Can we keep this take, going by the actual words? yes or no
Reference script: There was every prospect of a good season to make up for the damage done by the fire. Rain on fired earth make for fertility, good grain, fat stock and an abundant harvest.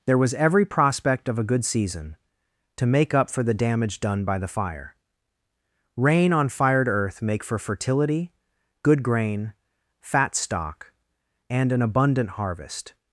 yes